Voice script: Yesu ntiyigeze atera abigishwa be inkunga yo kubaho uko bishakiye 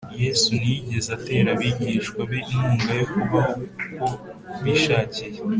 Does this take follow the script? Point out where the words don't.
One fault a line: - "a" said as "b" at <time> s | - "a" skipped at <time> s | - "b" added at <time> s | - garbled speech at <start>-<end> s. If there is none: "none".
none